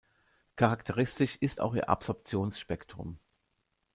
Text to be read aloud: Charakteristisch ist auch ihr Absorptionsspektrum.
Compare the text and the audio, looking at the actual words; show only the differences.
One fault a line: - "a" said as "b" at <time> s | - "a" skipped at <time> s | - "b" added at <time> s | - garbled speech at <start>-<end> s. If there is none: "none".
none